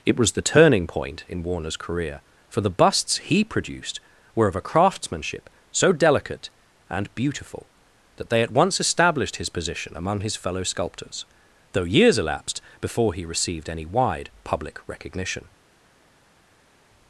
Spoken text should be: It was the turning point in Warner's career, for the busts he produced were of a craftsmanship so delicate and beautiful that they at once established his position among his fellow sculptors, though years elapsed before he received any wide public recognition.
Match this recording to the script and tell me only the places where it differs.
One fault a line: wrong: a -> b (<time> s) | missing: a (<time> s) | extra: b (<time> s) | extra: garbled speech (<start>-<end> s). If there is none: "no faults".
no faults